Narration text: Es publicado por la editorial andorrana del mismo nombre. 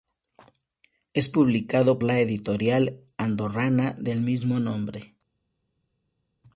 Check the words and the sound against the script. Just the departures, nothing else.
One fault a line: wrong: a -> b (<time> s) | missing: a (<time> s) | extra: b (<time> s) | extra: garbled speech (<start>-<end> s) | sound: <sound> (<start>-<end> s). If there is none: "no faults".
missing: por (2.0 s)